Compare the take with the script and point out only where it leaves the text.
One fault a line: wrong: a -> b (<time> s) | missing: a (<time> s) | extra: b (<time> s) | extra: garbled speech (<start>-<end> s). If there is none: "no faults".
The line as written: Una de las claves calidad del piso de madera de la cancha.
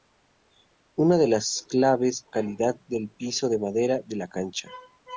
no faults